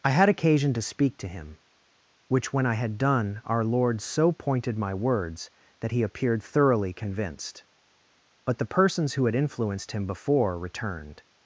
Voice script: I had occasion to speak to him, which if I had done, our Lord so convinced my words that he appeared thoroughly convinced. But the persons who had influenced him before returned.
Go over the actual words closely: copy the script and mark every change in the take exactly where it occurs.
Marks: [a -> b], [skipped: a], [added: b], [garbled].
I had occasion to speak to him, which [if -> when] I had done, our Lord so [convinced -> pointed] my words that he appeared thoroughly convinced. But the persons who had influenced him before returned.